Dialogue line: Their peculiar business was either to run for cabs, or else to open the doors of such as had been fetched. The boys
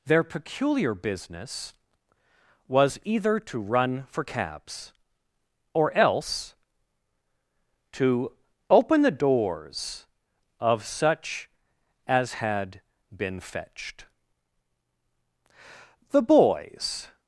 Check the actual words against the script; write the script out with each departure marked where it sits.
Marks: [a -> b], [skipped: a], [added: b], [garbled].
Their peculiar business was either to run for cabs, or else to open the doors of such as had been fetched. The boys